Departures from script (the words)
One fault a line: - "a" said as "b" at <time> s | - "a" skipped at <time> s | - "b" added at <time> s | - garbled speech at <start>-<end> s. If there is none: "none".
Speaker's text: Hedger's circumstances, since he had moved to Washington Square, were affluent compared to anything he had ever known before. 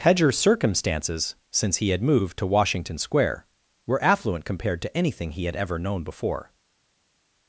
none